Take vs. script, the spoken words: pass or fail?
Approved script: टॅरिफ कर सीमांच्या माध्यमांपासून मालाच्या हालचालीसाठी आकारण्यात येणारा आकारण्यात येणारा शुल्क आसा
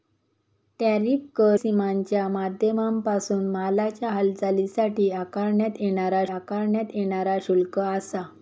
pass